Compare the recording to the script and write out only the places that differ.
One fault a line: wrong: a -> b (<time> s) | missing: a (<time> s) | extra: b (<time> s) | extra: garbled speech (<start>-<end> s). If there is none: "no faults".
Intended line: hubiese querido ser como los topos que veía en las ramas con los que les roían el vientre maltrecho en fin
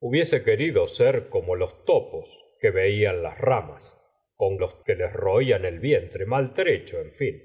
no faults